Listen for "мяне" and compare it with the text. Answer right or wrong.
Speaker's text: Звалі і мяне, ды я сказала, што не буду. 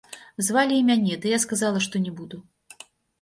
right